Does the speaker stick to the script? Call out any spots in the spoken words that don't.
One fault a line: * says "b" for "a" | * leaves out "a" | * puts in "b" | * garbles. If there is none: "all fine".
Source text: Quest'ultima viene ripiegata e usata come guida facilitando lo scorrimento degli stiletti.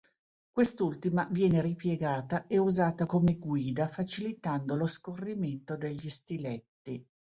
all fine